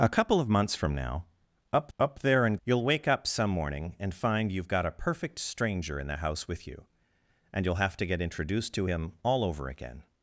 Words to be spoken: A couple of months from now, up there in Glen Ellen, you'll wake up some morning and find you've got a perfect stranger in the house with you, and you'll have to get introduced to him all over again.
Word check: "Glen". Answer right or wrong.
wrong